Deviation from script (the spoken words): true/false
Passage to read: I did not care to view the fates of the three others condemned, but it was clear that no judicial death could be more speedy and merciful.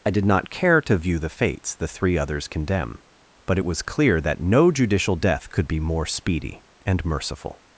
true